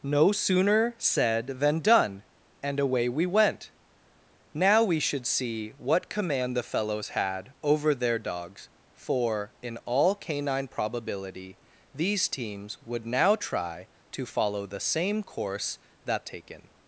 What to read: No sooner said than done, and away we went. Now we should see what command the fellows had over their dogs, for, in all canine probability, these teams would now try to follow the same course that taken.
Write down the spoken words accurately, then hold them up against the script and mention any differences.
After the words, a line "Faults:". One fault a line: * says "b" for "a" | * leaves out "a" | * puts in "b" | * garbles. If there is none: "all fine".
No sooner said than done, and away we went. Now we should see what command the fellows had over their dogs, for, in all canine probability, these teams would now try to follow the same course that taken.
Faults:
all fine